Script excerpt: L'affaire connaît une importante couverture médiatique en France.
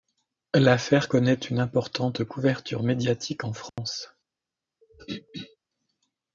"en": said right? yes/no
yes